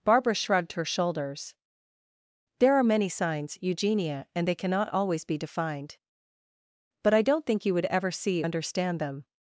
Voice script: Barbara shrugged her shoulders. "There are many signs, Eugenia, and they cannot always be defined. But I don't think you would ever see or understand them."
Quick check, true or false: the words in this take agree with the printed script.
false